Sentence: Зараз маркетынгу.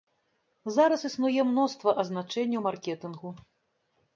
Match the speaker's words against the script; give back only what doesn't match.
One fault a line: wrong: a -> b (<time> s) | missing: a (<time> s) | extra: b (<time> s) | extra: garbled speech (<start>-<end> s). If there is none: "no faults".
extra: існуе мноства азначэнняў (1.1 s)